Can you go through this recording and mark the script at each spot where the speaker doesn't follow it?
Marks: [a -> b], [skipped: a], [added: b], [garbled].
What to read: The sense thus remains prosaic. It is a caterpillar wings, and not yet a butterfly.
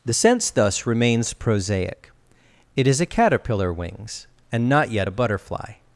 The sense thus remains prosaic. It is a caterpillar wings, and not yet a butterfly.